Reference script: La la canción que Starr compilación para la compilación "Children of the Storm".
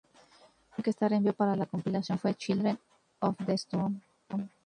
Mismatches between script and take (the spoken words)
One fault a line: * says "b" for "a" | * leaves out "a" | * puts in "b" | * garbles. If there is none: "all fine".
* leaves out "la"
* says "envió" for "compilación"
* puts in "fue"